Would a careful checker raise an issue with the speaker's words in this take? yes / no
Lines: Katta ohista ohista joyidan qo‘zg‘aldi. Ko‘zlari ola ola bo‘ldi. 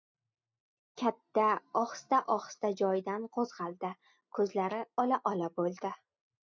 no